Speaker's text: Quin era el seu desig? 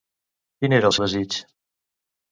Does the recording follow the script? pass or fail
fail